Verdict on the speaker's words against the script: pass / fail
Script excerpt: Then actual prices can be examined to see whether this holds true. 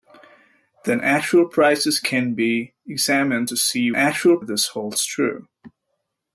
fail